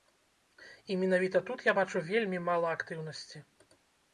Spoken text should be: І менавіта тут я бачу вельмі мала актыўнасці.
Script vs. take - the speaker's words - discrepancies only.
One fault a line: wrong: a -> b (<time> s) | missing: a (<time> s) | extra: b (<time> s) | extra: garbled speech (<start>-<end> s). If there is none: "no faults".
no faults